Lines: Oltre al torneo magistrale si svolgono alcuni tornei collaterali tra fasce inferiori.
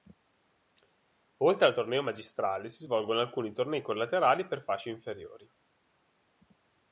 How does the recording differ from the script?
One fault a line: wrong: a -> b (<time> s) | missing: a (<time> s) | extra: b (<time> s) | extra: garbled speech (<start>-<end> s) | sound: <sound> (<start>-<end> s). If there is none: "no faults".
wrong: tra -> per (4.5 s)